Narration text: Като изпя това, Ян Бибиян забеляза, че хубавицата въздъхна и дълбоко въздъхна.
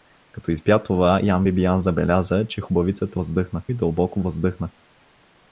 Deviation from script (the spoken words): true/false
false